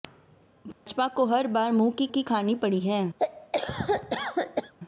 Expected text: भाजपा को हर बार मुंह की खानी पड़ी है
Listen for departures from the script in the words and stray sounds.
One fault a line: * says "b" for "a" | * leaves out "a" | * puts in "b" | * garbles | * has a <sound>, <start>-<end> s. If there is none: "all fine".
* has a dropout, 0.7-0.9 s
* puts in "की"
* has a cough, 3.2-4.7 s